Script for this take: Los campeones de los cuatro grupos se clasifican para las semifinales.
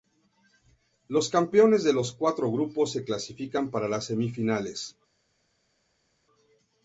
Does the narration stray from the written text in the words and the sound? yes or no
no